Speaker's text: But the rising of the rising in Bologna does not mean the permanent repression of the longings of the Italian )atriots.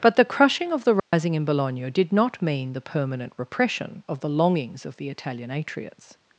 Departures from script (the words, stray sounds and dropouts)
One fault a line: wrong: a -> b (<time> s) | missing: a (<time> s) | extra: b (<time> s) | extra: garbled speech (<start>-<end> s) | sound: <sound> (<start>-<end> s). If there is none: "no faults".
wrong: rising -> crushing (0.2 s)
sound: dropout (1.0-1.1 s)
wrong: does -> did (1.9 s)